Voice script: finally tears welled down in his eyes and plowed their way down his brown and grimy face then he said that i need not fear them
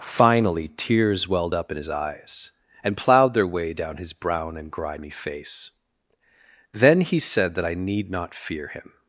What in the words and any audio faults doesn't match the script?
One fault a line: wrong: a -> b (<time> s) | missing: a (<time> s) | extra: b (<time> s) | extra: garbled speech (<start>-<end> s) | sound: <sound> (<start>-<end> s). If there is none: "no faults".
wrong: down -> up (1.5 s)
wrong: them -> him (8.7 s)